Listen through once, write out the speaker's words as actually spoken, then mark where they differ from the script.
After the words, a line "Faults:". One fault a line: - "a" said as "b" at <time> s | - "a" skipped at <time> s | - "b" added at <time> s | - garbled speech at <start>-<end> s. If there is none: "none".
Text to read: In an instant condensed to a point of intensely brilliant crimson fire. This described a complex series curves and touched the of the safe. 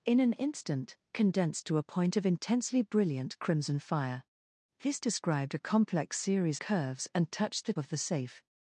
In an instant condensed to a point of intensely brilliant crimson fire. This described a complex series curves and touched the of the safe.
Faults:
none